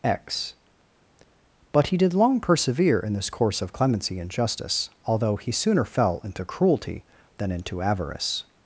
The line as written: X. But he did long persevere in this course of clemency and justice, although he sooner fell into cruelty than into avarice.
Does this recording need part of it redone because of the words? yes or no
no